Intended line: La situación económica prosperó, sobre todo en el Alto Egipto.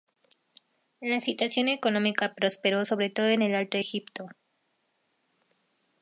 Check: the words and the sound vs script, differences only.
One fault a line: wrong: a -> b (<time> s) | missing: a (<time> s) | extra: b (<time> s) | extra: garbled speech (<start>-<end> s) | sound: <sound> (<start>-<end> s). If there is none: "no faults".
no faults